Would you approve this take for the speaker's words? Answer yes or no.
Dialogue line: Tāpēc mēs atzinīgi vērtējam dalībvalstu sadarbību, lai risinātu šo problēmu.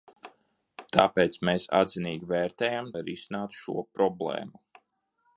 no